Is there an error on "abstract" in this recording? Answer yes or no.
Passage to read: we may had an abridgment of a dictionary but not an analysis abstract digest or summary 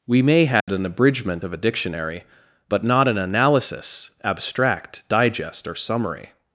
no